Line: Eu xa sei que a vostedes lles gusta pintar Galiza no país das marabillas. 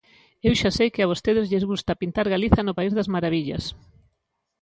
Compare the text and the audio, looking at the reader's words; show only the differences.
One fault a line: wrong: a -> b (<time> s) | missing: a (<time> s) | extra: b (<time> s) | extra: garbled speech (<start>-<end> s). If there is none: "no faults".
no faults